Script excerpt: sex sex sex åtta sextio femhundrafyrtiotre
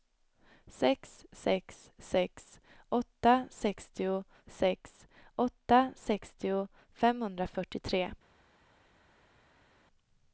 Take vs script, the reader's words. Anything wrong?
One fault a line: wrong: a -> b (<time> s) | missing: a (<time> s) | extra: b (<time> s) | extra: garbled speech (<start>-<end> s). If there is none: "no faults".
extra: sex åtta sextio (4.5 s)